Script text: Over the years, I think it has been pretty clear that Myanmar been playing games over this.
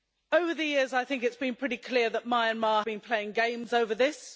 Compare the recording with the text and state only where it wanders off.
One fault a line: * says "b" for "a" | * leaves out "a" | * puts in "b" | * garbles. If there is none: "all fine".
all fine